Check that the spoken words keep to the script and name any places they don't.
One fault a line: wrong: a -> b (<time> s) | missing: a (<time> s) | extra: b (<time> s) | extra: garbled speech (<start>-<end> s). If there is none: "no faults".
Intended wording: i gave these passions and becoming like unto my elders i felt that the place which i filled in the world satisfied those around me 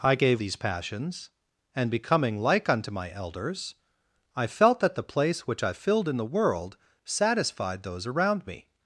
no faults